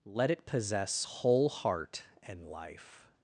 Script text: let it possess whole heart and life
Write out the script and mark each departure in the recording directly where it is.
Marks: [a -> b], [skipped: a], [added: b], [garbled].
let it possess whole heart and life